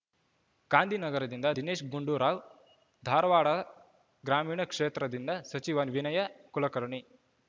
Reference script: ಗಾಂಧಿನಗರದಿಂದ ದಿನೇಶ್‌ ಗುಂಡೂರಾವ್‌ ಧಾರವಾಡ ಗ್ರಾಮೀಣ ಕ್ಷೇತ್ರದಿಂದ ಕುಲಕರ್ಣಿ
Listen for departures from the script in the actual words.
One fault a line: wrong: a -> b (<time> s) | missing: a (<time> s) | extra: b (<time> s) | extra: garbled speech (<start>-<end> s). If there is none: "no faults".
extra: ಸಚಿವ ವಿನಯ (5.4 s)